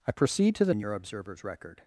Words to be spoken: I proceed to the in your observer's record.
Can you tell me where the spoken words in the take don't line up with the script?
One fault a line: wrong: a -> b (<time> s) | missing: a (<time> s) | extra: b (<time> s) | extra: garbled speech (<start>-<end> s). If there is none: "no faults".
no faults